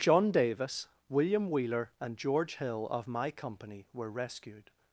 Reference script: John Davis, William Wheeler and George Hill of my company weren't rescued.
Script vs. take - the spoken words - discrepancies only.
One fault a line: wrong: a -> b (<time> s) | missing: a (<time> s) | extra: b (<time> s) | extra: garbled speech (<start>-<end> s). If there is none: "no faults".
wrong: weren't -> were (3.9 s)